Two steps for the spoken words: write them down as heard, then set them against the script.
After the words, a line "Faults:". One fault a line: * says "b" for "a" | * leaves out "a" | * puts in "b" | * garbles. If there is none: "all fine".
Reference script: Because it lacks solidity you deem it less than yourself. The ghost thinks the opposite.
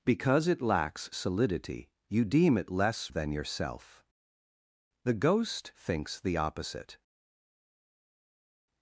Because it lacks solidity you deem it less than yourself. The ghost thinks the opposite.
Faults:
all fine